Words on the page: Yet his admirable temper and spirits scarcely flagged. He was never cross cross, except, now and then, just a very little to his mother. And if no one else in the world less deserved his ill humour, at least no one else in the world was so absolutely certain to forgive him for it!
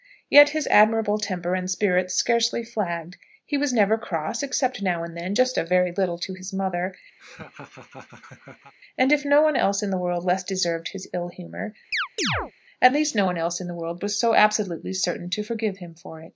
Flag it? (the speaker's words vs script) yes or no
yes